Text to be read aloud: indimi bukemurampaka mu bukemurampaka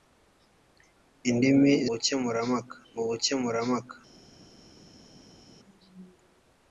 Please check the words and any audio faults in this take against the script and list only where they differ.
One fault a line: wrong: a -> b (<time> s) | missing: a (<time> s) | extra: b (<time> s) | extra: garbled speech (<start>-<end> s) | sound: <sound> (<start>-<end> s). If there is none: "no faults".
no faults